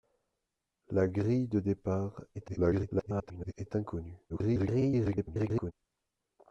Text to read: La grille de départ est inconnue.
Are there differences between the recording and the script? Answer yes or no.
yes